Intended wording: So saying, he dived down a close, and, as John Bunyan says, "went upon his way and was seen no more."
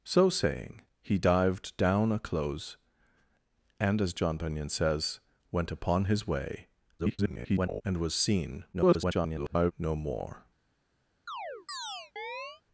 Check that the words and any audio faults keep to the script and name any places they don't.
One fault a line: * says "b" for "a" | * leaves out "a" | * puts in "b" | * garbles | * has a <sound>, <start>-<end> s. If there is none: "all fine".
* garbles
* garbles
* has a chirp, 11.3-12.6 s